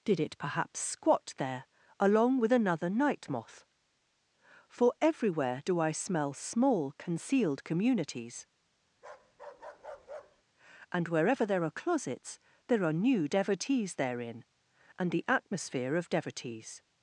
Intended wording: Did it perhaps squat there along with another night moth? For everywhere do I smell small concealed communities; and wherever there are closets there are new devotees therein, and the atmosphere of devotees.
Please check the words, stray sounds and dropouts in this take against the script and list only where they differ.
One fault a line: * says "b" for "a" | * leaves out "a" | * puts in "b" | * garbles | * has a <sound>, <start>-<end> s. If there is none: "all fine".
* has a bark, 8.9-10.4 s